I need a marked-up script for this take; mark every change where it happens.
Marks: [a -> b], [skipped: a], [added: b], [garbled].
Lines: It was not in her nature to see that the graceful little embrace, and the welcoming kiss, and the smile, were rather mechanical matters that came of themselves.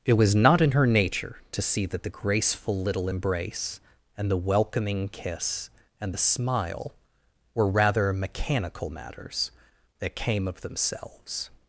It was not in her nature to see that the graceful little embrace, and the welcoming kiss, and the smile, were rather mechanical matters that came of themselves.